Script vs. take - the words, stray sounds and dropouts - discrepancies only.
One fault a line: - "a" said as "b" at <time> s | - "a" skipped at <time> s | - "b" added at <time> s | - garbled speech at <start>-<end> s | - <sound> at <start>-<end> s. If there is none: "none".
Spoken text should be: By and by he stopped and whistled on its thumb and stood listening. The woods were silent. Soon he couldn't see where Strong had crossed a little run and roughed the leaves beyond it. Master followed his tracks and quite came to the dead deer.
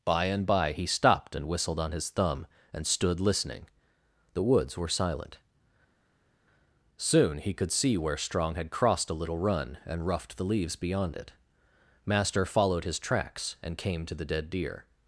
- "its" said as "his" at 1.9 s
- "couldn't" said as "could" at 7.5 s
- "quite" skipped at 13.8 s